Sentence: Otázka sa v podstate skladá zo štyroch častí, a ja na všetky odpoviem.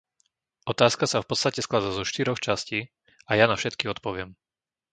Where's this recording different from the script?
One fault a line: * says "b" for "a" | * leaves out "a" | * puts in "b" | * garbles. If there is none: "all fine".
all fine